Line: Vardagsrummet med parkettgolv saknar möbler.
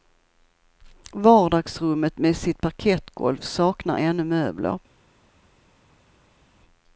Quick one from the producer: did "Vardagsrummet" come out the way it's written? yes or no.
yes